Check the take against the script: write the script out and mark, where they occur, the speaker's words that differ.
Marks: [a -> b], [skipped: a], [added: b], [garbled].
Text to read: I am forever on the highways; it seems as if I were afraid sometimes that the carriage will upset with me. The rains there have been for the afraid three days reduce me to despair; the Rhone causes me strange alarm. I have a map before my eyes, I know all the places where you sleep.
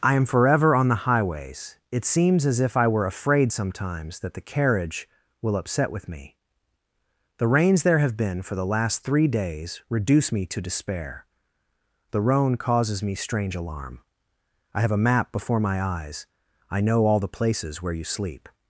I am forever on the highways; it seems as if I were afraid sometimes that the carriage will upset with me. The rains there have been for the [afraid -> last] three days reduce me to despair; the Rhone causes me strange alarm. I have a map before my eyes, I know all the places where you sleep.